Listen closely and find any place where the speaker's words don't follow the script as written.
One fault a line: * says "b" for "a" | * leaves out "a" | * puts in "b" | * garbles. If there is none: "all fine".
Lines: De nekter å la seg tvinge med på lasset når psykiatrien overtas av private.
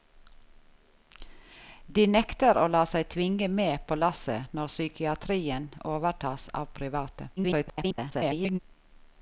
* garbles